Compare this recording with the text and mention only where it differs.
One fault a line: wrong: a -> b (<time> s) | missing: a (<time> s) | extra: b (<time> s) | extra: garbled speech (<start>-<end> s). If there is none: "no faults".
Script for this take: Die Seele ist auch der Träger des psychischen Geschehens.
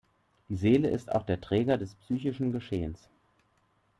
no faults